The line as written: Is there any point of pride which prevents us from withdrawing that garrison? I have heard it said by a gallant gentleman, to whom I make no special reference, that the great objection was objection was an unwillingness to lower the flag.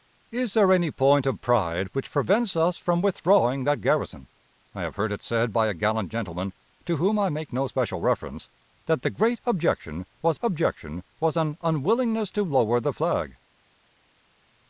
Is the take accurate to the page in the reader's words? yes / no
yes